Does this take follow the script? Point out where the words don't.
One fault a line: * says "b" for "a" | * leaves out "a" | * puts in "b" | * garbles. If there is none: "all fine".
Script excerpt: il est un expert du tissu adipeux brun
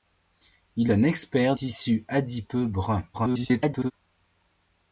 * leaves out "est"
* leaves out "du"
* garbles